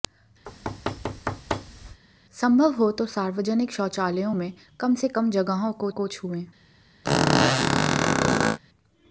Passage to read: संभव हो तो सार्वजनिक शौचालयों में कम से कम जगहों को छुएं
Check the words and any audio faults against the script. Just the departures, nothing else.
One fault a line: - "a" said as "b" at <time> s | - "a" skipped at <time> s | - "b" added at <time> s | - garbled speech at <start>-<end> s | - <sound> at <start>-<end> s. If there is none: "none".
- thud at 0.5-2.0 s
- "को" added at 5.9 s
- squeak at 7.0-8.6 s